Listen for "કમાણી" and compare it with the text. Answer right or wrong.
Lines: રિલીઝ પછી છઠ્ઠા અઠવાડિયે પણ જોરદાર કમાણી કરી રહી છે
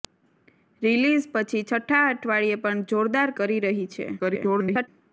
wrong